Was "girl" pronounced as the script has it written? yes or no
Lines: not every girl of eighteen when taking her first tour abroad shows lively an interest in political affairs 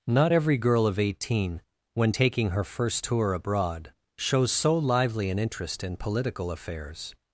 yes